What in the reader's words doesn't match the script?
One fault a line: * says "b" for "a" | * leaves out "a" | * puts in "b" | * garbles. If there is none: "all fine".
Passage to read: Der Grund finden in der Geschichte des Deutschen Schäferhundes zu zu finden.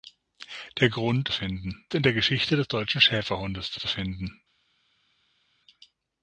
all fine